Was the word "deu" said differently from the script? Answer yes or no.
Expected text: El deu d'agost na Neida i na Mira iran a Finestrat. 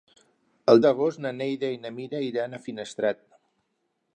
yes